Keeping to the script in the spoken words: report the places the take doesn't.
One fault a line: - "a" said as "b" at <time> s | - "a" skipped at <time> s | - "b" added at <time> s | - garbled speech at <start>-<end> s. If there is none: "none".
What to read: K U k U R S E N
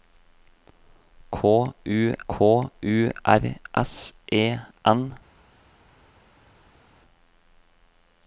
none